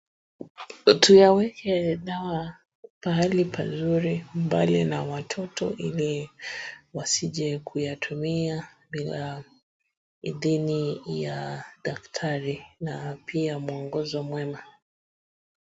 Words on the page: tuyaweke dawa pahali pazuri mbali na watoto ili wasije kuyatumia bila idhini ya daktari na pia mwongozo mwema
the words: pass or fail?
pass